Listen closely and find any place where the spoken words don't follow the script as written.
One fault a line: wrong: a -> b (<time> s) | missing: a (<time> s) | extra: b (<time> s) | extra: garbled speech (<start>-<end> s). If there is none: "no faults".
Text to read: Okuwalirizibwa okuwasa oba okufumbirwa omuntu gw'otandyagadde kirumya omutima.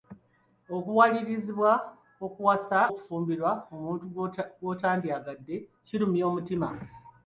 missing: oba (2.8 s)